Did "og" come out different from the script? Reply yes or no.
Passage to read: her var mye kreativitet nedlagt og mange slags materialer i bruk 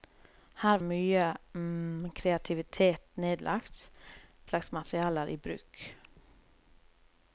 yes